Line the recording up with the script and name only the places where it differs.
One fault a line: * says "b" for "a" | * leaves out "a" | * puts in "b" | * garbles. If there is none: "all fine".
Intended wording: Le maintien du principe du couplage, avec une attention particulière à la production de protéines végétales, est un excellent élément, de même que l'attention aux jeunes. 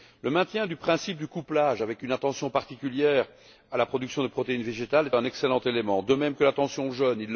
all fine